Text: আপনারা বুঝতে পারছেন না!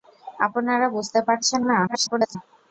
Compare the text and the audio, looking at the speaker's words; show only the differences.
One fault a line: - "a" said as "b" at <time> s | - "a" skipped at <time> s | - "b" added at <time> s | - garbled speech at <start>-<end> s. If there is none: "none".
- garbled speech at 1.9-2.4 s